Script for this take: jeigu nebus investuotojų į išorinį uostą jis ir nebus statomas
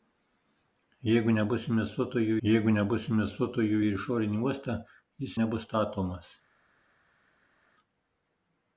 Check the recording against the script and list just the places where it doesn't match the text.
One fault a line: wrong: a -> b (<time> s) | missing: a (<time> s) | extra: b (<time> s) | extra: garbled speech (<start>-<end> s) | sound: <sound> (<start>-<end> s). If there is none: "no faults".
extra: jeigu nebus investuotojų (2.5 s)
missing: ir (5.4 s)